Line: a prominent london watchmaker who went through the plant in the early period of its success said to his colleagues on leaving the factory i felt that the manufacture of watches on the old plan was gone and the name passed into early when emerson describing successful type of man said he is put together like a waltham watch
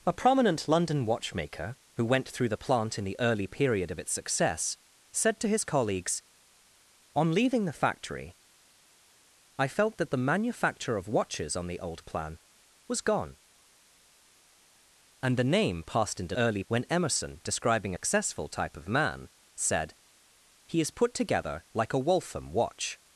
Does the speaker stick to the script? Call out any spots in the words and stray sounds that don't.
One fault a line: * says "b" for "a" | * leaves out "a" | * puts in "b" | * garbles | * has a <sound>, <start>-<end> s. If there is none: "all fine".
all fine